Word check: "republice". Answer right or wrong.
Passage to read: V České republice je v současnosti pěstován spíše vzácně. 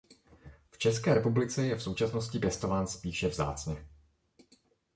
right